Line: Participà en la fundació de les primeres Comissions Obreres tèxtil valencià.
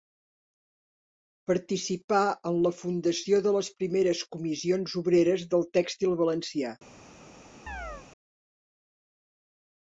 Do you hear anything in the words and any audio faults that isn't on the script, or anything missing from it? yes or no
yes